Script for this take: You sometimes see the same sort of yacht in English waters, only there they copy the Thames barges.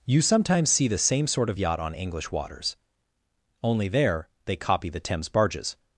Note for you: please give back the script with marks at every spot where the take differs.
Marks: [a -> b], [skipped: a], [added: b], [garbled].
You sometimes see the same sort of yacht [in -> on] English waters, only there they copy the Thames barges.